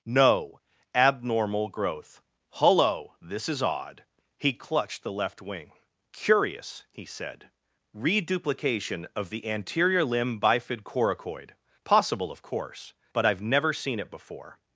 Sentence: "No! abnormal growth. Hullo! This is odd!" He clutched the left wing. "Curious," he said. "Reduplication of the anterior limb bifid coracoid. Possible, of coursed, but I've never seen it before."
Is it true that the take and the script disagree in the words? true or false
true